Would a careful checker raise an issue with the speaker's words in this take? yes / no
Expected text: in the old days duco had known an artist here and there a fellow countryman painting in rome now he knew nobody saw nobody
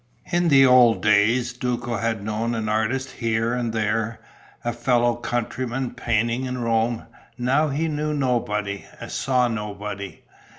no